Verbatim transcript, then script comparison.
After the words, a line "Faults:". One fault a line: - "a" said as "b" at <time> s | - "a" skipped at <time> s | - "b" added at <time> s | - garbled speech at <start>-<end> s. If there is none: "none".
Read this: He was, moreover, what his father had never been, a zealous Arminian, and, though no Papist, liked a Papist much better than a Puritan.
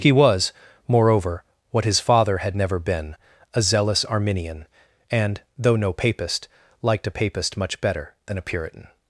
He was, moreover, what his father had never been, a zealous Arminian, and, though no Papist, liked a Papist much better than a Puritan.
Faults:
none